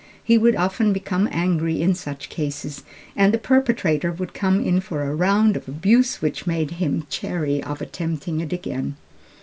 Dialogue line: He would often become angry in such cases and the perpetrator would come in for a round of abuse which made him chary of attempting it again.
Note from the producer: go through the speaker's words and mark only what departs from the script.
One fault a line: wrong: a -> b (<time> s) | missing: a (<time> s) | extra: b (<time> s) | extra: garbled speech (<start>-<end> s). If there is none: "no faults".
no faults